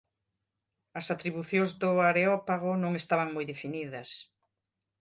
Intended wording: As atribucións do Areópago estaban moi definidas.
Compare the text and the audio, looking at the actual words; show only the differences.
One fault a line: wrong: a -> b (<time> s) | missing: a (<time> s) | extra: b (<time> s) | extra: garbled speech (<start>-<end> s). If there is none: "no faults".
extra: non (2.8 s)